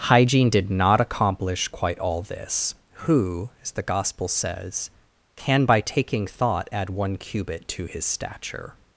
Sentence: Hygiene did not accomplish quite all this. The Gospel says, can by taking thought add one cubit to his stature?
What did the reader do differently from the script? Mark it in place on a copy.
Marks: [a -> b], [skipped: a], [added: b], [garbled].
Hygiene did not accomplish quite all this. [added: Who as] The Gospel says, can by taking thought add one cubit to his stature?